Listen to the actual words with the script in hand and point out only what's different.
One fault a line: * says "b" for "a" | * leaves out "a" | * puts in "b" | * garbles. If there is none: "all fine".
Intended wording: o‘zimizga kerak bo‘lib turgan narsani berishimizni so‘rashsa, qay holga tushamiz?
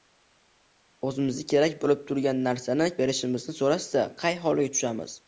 all fine